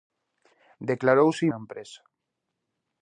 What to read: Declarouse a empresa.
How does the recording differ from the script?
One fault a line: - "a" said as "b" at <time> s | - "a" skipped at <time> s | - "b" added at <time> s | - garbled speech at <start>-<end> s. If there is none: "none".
none